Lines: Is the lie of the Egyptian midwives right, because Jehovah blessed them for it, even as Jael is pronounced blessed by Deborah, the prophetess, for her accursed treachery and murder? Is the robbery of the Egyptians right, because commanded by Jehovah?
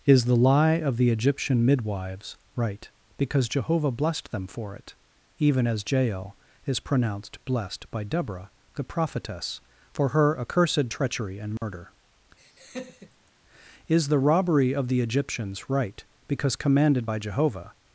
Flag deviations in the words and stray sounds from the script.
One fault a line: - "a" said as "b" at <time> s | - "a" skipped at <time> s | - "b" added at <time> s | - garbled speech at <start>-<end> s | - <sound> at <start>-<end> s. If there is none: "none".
- dropout at 11.6-11.6 s
- laugh at 12.4-13.3 s